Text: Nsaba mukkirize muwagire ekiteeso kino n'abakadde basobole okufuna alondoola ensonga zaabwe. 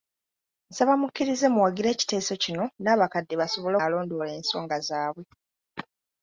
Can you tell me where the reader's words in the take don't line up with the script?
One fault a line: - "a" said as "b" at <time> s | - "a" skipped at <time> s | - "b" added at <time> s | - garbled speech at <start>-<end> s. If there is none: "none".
- "okufuna" skipped at 3.8 s